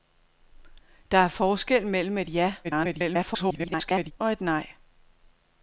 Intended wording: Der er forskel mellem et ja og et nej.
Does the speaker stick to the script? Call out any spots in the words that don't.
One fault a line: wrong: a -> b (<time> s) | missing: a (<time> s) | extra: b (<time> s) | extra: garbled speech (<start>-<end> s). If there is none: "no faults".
extra: garbled speech (2.6-4.1 s)